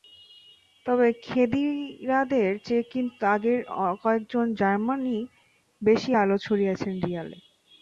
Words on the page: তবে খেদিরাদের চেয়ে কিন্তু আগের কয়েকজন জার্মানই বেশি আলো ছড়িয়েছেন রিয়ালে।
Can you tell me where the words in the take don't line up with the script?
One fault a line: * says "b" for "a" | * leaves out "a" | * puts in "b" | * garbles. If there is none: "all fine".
all fine